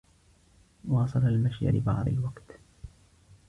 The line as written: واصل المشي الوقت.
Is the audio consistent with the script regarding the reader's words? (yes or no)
no